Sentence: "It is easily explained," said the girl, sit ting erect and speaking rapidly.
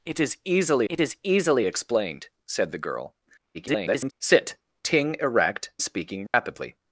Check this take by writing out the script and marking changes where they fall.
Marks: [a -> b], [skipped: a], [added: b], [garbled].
"It is easily [added: it is easily] explained," said the girl, [garbled] sit ting erect [skipped: and] speaking rapidly.